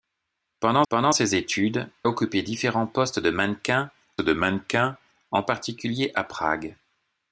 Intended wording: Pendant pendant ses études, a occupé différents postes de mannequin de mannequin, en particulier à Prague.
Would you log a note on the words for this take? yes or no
no